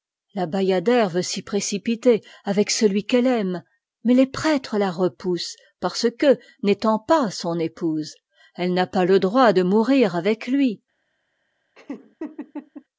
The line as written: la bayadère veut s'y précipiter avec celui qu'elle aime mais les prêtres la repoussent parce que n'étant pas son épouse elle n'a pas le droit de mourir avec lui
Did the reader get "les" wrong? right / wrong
right